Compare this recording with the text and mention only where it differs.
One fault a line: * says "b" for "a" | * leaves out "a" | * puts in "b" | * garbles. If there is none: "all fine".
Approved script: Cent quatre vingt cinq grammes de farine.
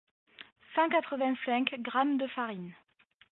all fine